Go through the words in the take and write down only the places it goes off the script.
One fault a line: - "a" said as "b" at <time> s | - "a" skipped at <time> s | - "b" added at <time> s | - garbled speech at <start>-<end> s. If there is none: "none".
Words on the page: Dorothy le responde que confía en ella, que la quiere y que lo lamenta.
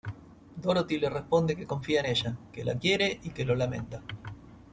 none